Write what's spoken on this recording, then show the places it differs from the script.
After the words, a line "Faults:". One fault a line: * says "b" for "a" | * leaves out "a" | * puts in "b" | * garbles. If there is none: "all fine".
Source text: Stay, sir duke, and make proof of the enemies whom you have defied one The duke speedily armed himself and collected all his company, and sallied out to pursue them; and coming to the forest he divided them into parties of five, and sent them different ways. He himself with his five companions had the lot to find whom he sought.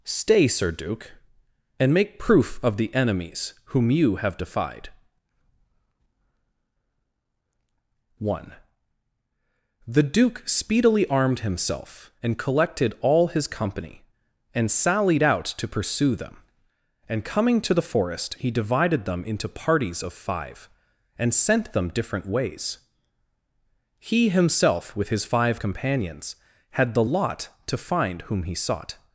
Stay, sir duke, and make proof of the enemies whom you have defied one The duke speedily armed himself and collected all his company, and sallied out to pursue them; and coming to the forest he divided them into parties of five, and sent them different ways. He himself with his five companions had the lot to find whom he sought.
Faults:
all fine